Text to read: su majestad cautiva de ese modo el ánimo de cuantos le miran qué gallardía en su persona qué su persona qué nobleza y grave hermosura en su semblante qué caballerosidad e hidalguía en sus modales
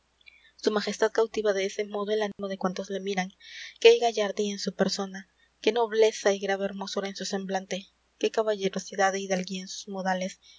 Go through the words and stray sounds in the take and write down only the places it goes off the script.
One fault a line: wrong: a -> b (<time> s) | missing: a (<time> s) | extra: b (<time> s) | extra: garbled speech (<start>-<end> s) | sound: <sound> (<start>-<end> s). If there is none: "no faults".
sound: dropout (2.3-2.4 s)
missing: su persona qué (5.7 s)